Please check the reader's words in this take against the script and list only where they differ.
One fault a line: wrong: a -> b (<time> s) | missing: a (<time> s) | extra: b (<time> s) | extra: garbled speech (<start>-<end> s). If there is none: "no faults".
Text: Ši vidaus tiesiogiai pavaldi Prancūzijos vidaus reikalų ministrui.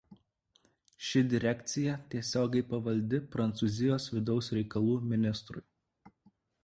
wrong: vidaus -> direkcija (1.3 s)